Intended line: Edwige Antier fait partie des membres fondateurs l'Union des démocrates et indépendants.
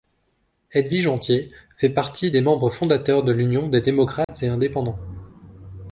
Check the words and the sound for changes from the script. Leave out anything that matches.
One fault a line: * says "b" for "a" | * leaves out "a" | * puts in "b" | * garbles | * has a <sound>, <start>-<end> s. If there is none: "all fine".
* puts in "de"
* has a dropout, 4.2-4.3 s